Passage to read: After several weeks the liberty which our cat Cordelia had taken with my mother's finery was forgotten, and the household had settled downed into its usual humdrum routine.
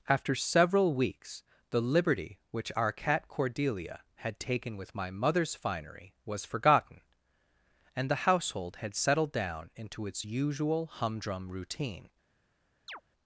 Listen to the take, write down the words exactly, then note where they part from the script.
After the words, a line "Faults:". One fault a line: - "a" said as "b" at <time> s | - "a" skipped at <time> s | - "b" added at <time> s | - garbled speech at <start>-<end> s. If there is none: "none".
After several weeks the liberty which our cat Cordelia had taken with my mother's finery was forgotten, and the household had settled down into its usual humdrum routine.
Faults:
- "downed" said as "down" at 9.3 s